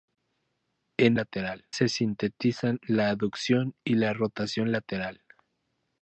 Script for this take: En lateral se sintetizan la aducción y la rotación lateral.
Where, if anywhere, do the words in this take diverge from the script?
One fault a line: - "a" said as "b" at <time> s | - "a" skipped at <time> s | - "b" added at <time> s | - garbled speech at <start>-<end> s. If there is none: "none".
none